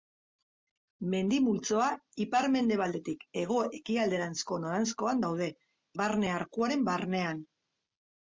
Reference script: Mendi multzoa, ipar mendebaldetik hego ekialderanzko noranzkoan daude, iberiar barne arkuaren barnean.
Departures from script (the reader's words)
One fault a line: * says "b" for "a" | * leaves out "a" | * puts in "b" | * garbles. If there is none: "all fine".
* leaves out "iberiar"